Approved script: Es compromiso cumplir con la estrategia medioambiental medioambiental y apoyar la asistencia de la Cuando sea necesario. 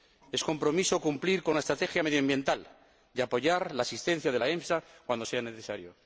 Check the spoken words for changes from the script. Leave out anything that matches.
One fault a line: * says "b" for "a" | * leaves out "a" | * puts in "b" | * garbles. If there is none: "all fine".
* leaves out "medioambiental"
* puts in "EMSA"